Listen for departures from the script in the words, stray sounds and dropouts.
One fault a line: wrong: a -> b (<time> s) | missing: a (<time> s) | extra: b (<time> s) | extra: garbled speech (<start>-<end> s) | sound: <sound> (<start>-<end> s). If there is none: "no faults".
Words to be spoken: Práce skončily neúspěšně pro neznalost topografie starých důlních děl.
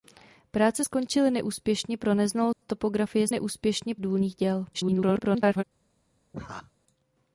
sound: dropout (2.5-2.6 s)
wrong: starých -> neúspěšně (3.3 s)
extra: garbled speech (4.7-5.6 s)
sound: laugh (6.3-6.7 s)